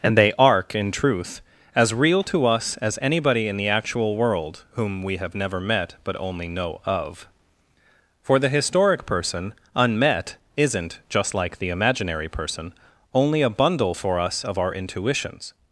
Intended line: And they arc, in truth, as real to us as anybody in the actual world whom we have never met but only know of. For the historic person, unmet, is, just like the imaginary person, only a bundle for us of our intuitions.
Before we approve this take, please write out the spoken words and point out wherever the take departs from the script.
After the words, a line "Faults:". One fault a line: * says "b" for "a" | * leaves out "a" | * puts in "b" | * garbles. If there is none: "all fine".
And they arc, in truth, as real to us as anybody in the actual world whom we have never met but only know of. For the historic person, unmet, isn't, just like the imaginary person, only a bundle for us of our intuitions.
Faults:
* says "isn't" for "is"